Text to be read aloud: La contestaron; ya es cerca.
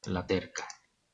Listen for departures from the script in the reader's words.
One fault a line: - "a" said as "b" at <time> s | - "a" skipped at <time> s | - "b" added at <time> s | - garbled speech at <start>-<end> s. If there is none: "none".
- "contestaron ya es" skipped at 0.3 s